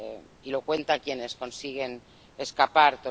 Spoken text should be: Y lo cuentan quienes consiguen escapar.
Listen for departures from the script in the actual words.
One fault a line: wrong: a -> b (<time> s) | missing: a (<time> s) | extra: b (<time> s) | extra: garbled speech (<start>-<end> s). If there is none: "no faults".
no faults